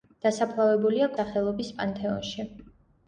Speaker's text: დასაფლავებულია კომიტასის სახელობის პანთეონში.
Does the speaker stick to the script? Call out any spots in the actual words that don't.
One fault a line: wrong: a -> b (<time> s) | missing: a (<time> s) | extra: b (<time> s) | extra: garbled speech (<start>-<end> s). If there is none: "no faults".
missing: კომიტასის (1.1 s)